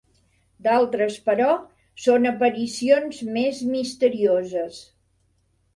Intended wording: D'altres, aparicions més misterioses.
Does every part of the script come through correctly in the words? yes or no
no